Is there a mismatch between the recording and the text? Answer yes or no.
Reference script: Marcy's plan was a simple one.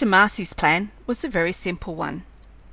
yes